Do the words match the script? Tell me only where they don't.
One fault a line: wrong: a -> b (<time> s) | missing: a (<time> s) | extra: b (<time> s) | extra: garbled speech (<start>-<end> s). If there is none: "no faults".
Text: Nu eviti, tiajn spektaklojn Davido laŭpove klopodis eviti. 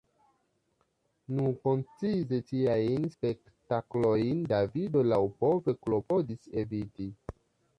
wrong: eviti -> koncize (1.7 s)